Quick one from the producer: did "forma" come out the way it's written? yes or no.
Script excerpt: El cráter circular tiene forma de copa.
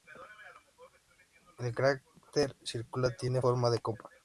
yes